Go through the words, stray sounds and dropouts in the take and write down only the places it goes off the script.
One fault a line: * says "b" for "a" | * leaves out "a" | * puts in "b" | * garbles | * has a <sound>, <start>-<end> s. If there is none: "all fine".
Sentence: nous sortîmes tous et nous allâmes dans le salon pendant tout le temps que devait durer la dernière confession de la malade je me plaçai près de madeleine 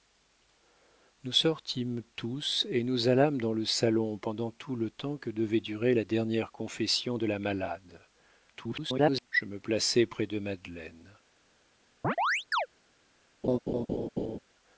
* garbles
* has a chirp, 12.0-12.7 s
* has a laugh, 13.4-14.4 s